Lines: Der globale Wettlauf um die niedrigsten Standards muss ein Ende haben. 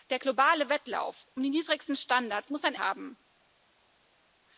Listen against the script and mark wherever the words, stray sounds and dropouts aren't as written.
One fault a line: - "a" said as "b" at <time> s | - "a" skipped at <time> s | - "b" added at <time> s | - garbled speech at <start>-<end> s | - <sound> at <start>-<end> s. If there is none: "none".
- "Ende" skipped at 2.7 s